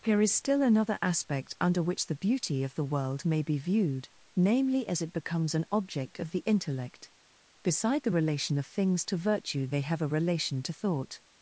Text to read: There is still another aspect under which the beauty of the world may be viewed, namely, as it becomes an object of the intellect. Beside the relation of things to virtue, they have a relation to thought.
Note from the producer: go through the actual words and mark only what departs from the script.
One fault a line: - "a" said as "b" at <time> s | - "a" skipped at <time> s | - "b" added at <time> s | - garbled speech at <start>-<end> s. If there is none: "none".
- "There" said as "Here" at 0.0 s